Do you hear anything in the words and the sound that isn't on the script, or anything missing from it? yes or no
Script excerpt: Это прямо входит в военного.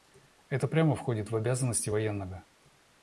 yes